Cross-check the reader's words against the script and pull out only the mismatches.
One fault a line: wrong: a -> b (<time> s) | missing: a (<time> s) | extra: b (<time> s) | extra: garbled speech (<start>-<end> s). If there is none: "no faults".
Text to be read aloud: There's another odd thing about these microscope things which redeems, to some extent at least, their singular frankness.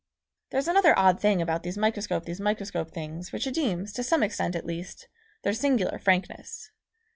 extra: these microscope (2.2 s)